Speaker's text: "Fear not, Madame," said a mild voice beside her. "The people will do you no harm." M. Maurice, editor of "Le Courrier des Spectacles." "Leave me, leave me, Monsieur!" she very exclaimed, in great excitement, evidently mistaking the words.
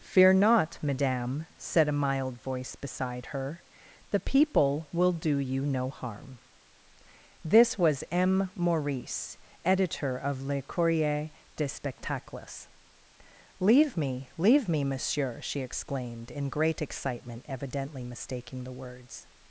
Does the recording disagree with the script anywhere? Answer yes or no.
yes